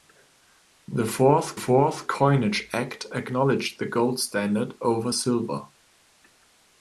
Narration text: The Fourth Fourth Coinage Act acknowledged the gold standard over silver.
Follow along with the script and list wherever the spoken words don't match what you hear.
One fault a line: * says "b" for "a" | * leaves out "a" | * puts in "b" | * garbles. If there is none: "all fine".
all fine